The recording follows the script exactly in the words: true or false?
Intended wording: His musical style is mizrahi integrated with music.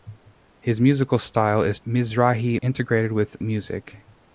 true